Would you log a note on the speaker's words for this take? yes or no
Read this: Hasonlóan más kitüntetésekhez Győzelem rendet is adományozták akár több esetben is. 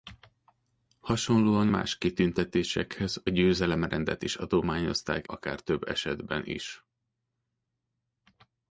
no